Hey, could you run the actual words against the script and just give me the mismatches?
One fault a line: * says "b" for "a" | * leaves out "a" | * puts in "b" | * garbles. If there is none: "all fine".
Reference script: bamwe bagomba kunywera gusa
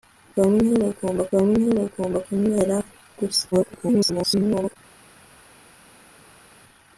* puts in "bamwe bagomba"
* garbles